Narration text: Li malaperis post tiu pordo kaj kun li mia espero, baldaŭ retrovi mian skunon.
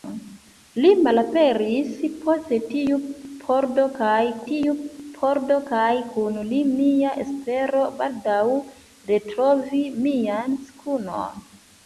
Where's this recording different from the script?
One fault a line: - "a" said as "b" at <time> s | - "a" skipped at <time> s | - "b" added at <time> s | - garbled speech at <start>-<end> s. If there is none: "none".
- "tiu pordo kaj" added at 4.5 s